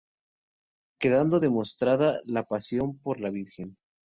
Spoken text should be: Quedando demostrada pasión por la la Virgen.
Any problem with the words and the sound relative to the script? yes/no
yes